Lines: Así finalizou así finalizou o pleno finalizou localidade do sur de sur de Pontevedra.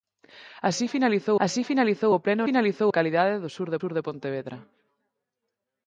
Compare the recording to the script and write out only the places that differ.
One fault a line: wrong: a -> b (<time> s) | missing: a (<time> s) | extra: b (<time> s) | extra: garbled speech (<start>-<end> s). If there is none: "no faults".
no faults